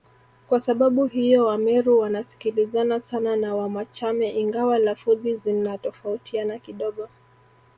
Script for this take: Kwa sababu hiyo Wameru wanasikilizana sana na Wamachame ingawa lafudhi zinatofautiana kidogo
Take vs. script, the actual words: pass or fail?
pass